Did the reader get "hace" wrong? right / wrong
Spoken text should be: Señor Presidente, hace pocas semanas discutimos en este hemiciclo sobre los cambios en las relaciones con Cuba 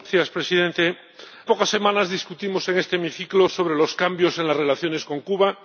wrong